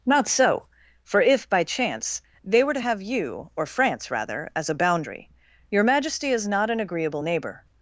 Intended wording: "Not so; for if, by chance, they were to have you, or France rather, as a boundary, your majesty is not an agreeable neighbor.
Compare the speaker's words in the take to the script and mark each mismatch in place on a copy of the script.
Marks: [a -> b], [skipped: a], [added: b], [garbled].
"Not so; for if, by chance, they were to have you, or France rather, as a boundary, your majesty is not an agreeable neighbor.